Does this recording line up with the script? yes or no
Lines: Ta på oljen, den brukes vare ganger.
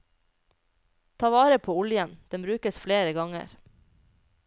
no